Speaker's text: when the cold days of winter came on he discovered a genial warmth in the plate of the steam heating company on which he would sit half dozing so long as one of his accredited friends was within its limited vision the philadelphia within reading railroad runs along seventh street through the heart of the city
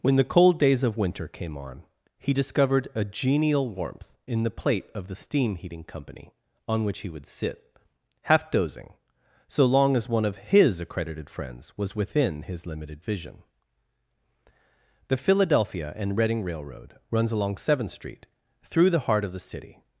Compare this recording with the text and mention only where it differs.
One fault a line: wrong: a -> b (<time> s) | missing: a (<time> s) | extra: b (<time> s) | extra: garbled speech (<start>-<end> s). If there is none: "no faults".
wrong: its -> his (12.4 s)
wrong: within -> and (15.9 s)